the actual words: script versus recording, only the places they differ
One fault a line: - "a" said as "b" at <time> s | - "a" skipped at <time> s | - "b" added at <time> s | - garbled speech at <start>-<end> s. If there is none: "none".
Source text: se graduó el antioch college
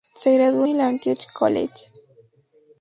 none